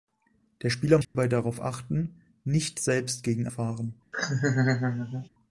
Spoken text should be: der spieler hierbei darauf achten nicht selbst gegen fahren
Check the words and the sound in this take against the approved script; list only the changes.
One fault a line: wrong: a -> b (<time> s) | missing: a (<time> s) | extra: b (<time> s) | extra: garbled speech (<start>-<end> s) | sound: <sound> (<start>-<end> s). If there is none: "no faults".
sound: dropout (1.0-1.2 s)
sound: laugh (4.1-5.3 s)